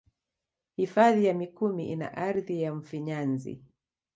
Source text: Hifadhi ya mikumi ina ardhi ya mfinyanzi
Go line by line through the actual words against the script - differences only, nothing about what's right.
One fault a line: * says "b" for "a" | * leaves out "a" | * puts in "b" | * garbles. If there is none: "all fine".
all fine